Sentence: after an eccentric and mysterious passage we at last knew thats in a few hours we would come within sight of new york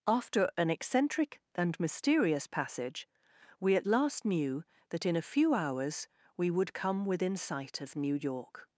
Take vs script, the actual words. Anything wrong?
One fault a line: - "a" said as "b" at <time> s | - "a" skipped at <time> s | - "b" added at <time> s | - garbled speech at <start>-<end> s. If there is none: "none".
- "thats" said as "that" at 4.9 s